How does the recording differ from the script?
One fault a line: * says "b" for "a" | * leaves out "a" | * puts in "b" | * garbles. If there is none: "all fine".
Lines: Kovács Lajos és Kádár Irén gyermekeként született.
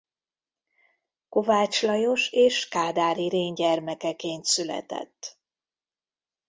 all fine